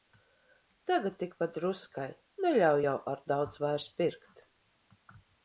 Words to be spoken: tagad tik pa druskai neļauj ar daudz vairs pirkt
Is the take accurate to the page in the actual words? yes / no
no